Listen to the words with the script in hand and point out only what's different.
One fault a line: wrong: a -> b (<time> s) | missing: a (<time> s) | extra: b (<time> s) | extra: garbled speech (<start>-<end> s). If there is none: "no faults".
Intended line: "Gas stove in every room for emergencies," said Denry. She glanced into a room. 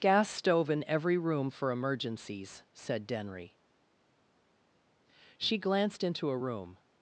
no faults